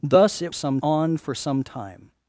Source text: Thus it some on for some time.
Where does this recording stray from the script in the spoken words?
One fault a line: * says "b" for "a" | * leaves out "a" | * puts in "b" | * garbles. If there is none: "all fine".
all fine